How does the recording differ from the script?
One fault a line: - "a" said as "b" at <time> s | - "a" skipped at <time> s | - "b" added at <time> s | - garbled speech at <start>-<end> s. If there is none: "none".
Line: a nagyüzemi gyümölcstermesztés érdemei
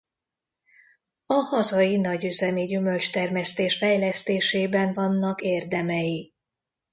- "hazai" added at 1.3 s
- "fejlesztésében vannak" added at 3.8 s